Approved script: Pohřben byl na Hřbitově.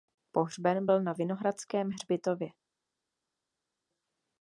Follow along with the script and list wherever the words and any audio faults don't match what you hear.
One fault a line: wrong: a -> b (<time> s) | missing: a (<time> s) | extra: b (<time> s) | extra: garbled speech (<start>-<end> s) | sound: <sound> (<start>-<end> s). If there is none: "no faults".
extra: Vinohradském (1.1 s)